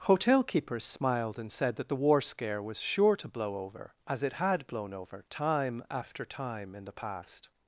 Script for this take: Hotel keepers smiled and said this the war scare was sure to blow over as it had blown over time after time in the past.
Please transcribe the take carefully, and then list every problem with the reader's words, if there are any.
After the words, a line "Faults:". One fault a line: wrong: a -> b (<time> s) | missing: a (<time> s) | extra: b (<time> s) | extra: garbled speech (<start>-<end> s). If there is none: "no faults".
Hotel keepers smiled and said that the war scare was sure to blow over as it had blown over time after time in the past.
Faults:
wrong: this -> that (1.8 s)